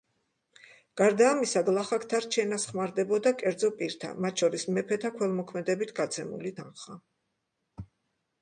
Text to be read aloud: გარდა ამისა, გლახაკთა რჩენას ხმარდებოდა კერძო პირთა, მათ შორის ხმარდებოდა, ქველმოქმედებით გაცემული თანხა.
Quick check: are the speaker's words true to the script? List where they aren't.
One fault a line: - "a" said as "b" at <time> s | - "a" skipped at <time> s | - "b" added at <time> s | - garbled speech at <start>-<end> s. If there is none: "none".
- "ხმარდებოდა" said as "მეფეთა" at 4.8 s